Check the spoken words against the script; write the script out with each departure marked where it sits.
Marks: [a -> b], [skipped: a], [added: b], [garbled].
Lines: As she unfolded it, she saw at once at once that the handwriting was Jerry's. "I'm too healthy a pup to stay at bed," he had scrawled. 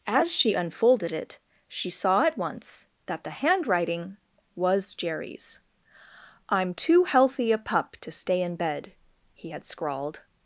As she unfolded it, she saw at once [skipped: at once] that the handwriting was Jerry's. "I'm too healthy a pup to stay [at -> in] bed," he had scrawled.